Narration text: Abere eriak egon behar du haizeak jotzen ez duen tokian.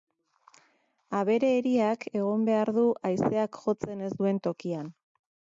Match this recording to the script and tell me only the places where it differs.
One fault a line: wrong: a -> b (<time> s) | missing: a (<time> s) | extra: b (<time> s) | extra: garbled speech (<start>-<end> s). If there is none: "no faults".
no faults